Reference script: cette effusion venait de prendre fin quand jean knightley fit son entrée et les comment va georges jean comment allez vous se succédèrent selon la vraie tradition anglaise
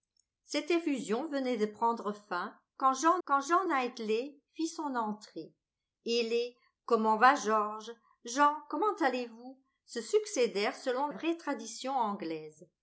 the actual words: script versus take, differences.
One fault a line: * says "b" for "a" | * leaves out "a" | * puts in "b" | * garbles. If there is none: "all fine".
* puts in "quand jean"
* leaves out "la"